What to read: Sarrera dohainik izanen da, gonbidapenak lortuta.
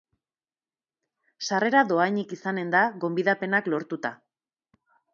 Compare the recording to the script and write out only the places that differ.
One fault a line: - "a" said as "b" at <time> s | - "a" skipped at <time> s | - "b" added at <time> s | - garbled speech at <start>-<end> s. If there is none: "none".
none